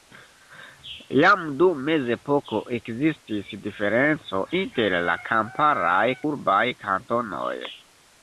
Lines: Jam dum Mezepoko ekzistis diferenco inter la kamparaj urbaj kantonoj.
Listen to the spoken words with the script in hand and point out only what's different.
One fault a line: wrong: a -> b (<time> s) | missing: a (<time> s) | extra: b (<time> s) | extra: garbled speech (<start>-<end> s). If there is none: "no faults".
no faults